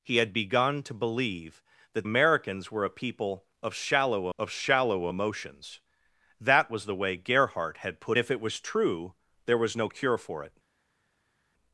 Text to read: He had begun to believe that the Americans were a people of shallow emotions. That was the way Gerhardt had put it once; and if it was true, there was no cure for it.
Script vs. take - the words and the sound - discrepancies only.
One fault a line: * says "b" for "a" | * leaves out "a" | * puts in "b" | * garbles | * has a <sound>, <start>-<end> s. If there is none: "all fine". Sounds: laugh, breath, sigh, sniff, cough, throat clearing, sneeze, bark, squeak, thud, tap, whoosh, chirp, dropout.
* leaves out "the"
* puts in "of shallow"
* leaves out "it once and"